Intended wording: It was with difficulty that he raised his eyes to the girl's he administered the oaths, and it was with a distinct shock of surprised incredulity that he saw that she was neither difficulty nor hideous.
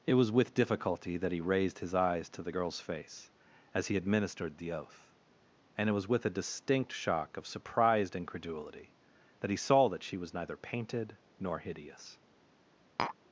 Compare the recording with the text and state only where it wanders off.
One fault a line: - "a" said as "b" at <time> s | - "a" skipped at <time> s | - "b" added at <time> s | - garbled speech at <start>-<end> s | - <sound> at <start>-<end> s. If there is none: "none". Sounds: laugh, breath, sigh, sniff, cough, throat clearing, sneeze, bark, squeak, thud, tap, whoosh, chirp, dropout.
- "face as" added at 2.8 s
- "oaths" said as "oath" at 4.7 s
- "difficulty" said as "painted" at 10.6 s
- tap at 13.0-13.2 s